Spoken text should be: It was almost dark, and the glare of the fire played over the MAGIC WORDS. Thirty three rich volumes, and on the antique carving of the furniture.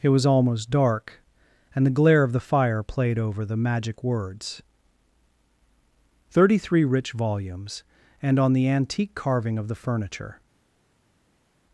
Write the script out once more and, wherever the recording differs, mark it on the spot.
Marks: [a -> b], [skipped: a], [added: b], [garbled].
It was almost dark, and the glare of the fire played over the MAGIC WORDS. Thirty three rich volumes, and on the antique carving of the furniture.